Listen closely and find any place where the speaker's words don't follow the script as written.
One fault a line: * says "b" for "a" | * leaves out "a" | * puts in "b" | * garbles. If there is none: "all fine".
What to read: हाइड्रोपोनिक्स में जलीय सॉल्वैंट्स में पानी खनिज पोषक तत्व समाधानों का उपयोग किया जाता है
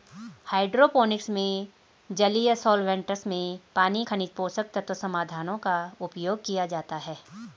all fine